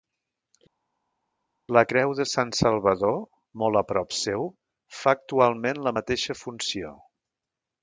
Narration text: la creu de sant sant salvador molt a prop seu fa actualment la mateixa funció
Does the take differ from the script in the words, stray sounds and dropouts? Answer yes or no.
yes